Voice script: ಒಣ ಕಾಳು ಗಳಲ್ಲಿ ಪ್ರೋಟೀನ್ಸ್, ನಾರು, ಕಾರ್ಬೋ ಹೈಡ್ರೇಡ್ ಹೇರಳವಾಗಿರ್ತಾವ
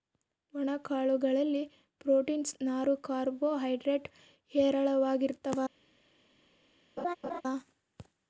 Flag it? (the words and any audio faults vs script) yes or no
yes